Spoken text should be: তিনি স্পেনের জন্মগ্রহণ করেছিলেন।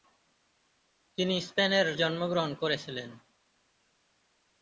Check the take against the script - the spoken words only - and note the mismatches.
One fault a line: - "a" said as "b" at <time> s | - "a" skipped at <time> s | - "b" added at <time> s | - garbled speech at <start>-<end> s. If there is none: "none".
none